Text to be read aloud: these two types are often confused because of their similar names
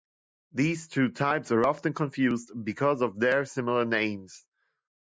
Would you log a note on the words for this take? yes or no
no